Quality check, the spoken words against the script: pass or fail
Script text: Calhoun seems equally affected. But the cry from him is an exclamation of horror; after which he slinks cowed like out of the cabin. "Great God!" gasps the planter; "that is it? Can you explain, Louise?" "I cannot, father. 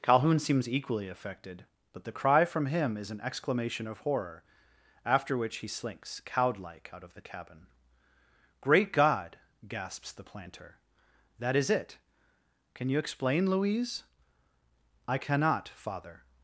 pass